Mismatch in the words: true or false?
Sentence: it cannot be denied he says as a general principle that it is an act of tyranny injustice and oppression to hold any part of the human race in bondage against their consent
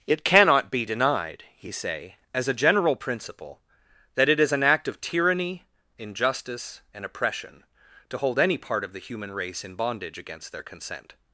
true